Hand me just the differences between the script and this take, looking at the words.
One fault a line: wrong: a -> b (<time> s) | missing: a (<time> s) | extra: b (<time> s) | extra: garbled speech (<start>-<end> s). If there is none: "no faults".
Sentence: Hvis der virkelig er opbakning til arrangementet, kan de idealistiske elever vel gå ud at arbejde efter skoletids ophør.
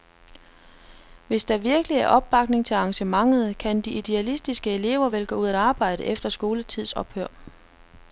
no faults